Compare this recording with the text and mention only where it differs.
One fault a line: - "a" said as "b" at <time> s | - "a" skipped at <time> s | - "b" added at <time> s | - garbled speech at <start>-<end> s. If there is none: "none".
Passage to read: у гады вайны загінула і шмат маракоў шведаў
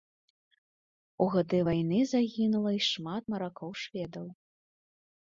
none